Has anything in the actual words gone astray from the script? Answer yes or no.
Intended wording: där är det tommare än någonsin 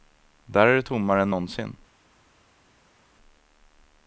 no